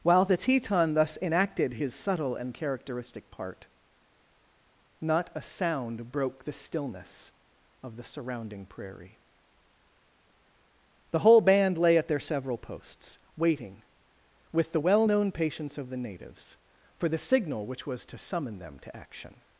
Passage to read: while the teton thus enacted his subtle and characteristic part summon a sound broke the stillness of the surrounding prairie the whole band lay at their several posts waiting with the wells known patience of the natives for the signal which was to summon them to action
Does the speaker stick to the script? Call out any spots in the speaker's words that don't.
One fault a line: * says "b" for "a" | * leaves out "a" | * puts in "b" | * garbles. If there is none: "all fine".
* says "not" for "summon"
* says "well" for "wells"